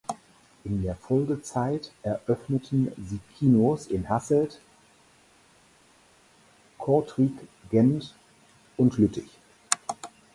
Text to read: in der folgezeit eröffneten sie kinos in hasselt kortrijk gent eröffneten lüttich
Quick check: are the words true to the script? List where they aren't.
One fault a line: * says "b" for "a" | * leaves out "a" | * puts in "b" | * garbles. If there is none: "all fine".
* says "und" for "eröffneten"